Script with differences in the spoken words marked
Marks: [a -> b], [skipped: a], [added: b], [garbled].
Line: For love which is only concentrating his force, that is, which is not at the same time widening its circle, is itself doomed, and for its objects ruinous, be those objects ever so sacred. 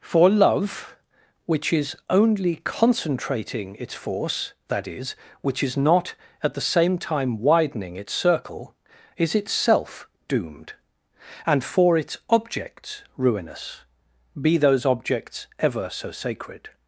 For love which is only concentrating [his -> its] force, that is, which is not at the same time widening its circle, is itself doomed, and for its objects ruinous, be those objects ever so sacred.